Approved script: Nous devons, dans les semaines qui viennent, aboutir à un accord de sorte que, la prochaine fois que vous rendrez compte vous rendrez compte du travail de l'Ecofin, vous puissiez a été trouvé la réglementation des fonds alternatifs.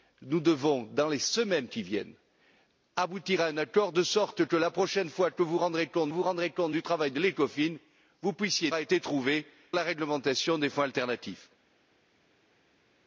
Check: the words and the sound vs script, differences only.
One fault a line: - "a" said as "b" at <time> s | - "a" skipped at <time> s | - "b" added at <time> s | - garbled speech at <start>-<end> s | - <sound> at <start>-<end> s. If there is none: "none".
none